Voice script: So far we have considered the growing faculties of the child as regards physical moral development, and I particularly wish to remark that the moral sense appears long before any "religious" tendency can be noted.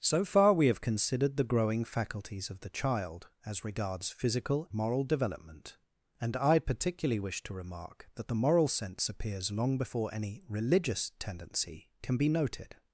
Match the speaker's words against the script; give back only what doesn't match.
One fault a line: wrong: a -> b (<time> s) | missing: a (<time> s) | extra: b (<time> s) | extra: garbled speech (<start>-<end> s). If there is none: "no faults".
no faults